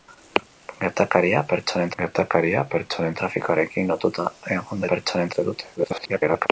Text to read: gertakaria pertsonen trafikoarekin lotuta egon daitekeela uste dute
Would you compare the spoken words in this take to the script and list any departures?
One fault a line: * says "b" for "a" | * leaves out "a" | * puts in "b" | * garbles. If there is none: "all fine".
* puts in "gertakaria pertsonen"
* says "pertsonen" for "daitekeela"
* garbles